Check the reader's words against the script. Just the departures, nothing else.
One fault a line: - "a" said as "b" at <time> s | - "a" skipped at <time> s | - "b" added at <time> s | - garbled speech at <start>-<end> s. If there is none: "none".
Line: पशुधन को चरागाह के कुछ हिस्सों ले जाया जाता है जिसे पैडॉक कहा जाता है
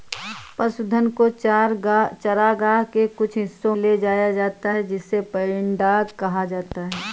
none